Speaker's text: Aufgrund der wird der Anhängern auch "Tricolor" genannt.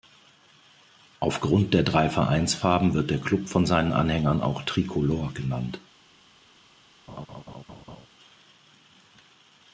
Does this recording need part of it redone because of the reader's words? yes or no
yes